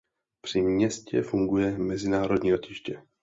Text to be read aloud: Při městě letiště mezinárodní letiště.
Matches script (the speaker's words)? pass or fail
fail